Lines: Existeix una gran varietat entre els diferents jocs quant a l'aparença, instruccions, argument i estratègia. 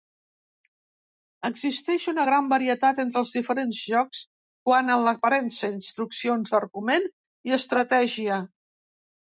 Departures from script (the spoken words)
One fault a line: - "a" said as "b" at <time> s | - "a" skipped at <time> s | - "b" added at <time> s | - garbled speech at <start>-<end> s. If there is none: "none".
none